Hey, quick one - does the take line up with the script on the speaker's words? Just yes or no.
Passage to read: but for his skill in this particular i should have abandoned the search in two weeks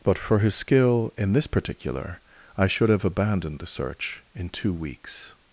yes